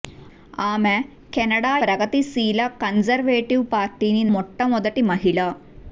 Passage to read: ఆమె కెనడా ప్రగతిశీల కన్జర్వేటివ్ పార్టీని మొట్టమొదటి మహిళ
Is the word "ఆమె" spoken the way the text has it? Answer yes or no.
yes